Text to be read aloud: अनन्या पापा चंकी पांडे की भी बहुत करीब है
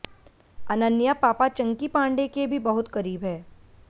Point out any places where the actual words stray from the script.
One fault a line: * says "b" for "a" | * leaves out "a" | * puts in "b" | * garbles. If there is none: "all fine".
* says "के" for "की"